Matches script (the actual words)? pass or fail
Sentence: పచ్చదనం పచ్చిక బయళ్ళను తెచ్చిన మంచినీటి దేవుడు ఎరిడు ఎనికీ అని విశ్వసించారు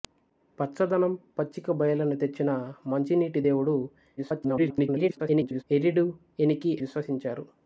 fail